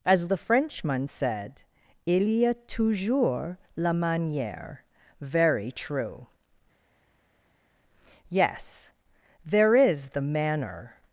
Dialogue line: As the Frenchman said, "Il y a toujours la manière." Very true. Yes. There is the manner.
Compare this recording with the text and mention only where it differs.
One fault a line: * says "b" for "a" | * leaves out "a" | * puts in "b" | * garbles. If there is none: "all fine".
all fine